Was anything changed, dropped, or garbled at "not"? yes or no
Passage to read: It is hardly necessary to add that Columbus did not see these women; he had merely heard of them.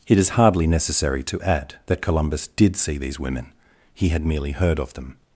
yes